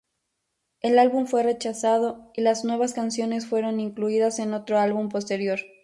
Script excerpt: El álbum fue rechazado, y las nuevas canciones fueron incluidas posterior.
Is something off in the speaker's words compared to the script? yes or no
yes